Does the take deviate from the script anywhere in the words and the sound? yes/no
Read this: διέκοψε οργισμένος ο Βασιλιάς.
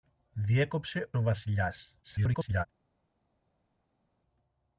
yes